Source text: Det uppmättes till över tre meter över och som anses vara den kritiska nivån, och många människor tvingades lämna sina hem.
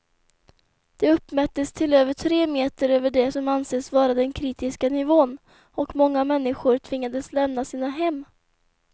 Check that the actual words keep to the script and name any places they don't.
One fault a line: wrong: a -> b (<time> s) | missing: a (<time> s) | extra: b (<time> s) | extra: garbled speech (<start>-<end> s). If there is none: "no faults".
wrong: och -> det (3.1 s)